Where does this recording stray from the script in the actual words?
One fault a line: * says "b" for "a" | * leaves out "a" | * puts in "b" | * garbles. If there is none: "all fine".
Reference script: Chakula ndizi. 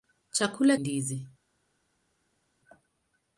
all fine